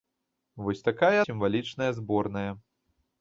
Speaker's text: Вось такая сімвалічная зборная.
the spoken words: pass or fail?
pass